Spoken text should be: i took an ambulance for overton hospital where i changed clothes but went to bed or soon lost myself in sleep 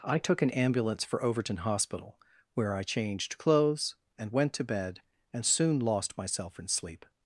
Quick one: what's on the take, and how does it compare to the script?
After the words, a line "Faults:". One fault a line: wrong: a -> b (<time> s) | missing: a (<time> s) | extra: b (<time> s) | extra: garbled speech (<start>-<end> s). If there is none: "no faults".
i took an ambulance for overton hospital where i changed clothes and went to bed and soon lost myself in sleep
Faults:
wrong: but -> and (4.2 s)
wrong: or -> and (5.3 s)